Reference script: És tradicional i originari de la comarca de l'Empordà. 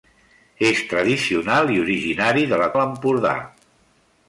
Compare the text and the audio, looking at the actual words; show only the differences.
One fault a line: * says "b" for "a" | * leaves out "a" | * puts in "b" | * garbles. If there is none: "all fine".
* leaves out "comarca"